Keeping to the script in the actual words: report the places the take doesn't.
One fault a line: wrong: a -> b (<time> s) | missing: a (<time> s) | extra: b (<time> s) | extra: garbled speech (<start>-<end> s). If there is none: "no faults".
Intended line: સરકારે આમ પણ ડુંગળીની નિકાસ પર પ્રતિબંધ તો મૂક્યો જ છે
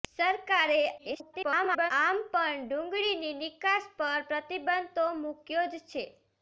extra: garbled speech (1.0-1.9 s)